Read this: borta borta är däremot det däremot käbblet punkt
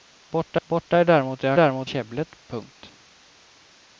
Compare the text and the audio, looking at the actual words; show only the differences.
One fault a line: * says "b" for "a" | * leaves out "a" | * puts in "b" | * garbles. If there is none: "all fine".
all fine